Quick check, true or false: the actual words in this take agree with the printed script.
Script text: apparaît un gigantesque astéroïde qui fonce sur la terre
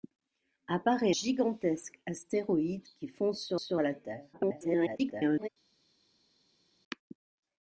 false